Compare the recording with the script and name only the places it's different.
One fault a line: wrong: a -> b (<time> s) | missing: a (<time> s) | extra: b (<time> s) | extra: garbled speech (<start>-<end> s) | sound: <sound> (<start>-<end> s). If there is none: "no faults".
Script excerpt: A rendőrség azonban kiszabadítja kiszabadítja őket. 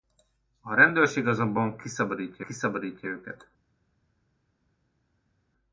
no faults